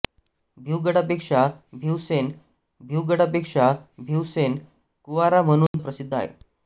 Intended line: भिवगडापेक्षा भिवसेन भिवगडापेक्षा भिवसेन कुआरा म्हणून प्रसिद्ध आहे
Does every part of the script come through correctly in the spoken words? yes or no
yes